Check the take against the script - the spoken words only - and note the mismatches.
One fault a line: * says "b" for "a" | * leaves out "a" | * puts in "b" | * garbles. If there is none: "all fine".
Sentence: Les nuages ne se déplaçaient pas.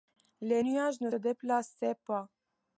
* leaves out "se"